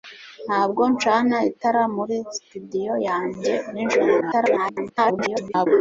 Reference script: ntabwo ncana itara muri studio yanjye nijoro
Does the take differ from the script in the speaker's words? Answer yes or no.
yes